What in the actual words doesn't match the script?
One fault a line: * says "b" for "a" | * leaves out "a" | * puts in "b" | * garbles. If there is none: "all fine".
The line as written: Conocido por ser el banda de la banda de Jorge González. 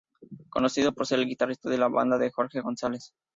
* says "guitarrista" for "banda"